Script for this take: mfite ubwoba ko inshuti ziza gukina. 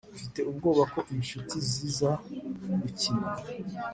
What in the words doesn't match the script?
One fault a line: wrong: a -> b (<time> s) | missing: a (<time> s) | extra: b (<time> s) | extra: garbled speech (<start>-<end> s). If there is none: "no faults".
no faults